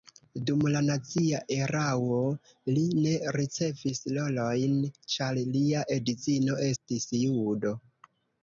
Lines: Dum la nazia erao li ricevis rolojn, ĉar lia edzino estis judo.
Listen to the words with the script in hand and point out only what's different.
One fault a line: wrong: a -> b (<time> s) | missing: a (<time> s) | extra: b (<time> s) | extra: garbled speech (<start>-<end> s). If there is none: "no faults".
extra: ne (3.0 s)